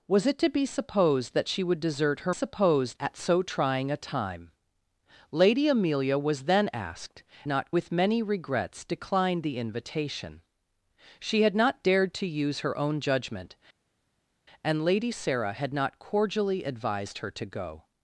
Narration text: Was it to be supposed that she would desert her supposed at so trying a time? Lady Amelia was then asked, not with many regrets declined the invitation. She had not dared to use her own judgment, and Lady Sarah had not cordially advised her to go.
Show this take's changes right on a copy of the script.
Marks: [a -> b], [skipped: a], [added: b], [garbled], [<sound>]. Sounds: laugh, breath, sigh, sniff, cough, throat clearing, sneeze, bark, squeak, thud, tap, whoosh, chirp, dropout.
Was it to be supposed that she would desert her supposed at so trying a time? Lady Amelia was then asked, not with many regrets declined the invitation. She had not dared to use her own judgment, and Lady Sarah had not cordially advised her to go.